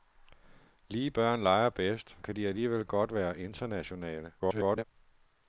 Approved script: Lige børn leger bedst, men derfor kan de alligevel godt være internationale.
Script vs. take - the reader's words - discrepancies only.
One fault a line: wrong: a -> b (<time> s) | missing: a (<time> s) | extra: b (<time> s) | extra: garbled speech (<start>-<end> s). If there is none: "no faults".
missing: men derfor (2.2 s)
extra: garbled speech (4.4-4.8 s)